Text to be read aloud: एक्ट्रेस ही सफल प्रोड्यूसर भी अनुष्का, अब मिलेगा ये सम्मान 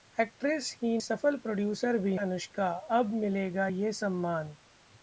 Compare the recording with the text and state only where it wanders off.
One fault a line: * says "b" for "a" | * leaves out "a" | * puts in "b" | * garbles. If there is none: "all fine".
all fine